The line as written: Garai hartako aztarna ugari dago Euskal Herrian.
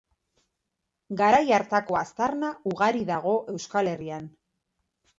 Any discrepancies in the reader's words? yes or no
no